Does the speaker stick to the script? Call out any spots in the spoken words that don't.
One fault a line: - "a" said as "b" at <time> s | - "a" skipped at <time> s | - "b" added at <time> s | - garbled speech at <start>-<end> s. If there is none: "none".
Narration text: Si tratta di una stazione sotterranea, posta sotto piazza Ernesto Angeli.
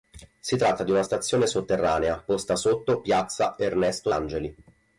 none